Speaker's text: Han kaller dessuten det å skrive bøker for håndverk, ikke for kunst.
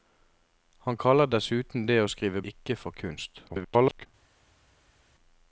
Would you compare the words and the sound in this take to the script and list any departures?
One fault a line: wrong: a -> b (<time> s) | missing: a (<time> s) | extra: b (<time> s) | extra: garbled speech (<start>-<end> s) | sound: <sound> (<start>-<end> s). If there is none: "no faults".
missing: bøker for håndverk (2.4 s)
extra: garbled speech (3.5-4.1 s)